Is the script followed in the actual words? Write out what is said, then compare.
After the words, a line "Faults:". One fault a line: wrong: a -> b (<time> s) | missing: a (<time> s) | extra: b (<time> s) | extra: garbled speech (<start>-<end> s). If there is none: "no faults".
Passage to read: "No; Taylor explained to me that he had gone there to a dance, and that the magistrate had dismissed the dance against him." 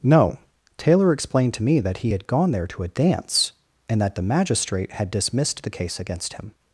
"No; Taylor explained to me that he had gone there to a dance, and that the magistrate had dismissed the case against him."
Faults:
wrong: dance -> case (5.7 s)